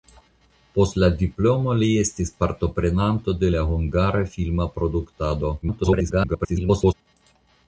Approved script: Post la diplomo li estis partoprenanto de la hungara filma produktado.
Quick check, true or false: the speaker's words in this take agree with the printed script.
false